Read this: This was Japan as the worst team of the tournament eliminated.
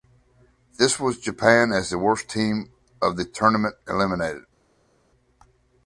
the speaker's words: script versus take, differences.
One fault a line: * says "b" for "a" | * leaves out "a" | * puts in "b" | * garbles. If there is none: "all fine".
all fine